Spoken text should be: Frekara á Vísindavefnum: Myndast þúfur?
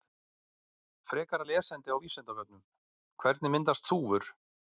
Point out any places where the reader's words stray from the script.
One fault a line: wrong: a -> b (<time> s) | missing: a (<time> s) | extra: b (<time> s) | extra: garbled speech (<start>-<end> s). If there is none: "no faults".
extra: lesefni (1.5 s)
extra: Hvernig (3.3 s)